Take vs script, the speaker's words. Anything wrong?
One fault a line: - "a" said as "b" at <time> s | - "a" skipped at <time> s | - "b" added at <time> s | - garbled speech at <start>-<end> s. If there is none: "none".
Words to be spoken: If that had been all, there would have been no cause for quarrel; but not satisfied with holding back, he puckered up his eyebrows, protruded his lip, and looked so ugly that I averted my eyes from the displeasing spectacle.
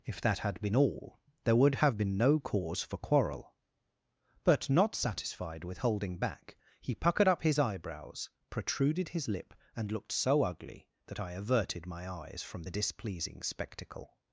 none